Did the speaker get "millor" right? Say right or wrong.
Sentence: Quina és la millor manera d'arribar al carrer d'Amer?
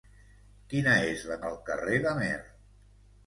wrong